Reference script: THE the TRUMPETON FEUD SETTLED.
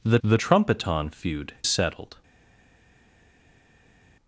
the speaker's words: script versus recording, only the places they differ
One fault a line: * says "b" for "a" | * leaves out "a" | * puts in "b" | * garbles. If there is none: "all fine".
all fine